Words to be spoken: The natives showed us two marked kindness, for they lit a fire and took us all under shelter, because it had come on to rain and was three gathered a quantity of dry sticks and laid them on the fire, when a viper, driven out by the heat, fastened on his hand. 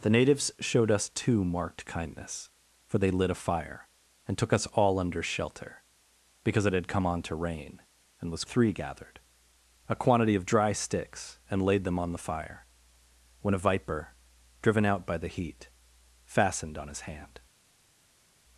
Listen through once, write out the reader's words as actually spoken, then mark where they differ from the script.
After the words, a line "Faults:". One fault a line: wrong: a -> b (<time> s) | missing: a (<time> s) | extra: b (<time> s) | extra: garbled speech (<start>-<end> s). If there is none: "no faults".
The natives showed us two marked kindness, for they lit a fire and took us all under shelter, because it had come on to rain and was three gathered a quantity of dry sticks and laid them on the fire, when a viper, driven out by the heat, fastened on his hand.
Faults:
no faults